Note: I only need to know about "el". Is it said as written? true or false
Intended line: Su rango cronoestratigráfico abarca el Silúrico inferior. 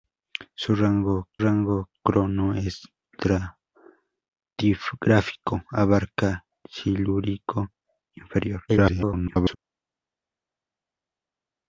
false